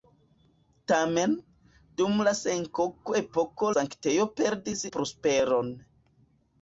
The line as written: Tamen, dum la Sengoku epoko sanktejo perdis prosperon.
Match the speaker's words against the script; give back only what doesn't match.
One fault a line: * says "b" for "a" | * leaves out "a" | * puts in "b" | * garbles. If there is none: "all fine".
all fine